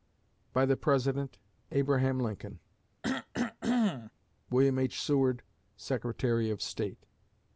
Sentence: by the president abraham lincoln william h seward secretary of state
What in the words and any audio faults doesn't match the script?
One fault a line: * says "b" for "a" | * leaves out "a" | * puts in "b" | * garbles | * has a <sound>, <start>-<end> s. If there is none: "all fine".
* has a cough, 3.0-4.1 s